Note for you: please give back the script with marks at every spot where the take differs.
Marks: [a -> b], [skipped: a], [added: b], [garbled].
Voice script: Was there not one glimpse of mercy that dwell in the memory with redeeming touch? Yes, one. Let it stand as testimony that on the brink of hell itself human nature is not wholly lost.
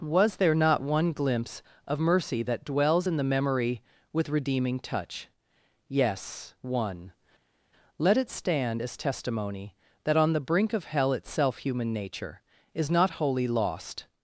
Was there not one glimpse of mercy that [dwell -> dwells] in the memory with redeeming touch? Yes, one. Let it stand as testimony that on the brink of hell itself human nature is not wholly lost.